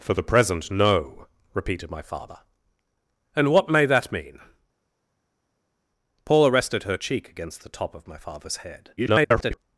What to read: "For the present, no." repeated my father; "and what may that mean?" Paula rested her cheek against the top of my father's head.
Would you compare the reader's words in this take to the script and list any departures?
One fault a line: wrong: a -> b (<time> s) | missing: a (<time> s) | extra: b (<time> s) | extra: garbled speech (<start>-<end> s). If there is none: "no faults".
extra: garbled speech (9.0-9.6 s)